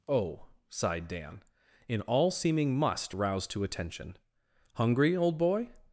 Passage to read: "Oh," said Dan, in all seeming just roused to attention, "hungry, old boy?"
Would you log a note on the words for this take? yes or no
yes